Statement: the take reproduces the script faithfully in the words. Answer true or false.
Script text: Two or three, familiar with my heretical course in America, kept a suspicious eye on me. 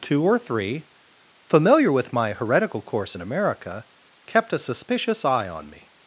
true